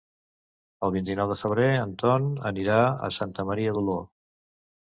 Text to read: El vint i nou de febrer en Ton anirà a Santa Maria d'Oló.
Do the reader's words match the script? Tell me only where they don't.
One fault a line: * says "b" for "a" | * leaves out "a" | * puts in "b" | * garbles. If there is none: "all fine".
all fine